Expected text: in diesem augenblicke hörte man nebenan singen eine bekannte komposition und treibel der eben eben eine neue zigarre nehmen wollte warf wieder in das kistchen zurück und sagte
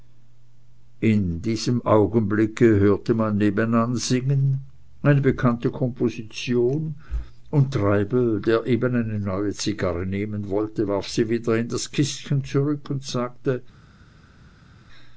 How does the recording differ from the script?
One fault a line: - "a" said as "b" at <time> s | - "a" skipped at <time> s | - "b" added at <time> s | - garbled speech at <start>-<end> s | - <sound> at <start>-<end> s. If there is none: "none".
- "eben" skipped at 8.9 s
- "sie" added at 11.1 s